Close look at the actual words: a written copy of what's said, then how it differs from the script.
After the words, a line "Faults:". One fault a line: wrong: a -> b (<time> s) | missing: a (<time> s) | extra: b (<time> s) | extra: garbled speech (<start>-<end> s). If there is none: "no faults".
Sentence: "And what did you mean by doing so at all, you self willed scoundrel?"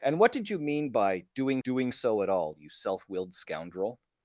"And what did you mean by doing doing so at all, you self willed scoundrel?"
Faults:
extra: doing (1.6 s)